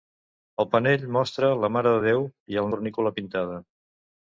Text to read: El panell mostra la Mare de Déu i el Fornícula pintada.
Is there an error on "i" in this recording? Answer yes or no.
no